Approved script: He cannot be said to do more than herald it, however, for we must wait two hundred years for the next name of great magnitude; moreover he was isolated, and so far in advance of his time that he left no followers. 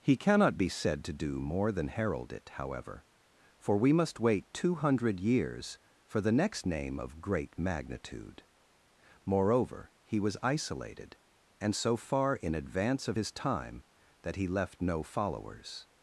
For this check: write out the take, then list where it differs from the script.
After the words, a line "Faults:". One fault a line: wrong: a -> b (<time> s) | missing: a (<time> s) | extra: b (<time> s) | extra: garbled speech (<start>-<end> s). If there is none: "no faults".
He cannot be said to do more than herald it, however, for we must wait two hundred years for the next name of great magnitude; moreover he was isolated, and so far in advance of his time that he left no followers.
Faults:
no faults